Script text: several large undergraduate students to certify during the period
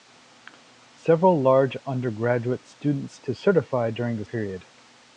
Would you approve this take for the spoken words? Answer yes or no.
yes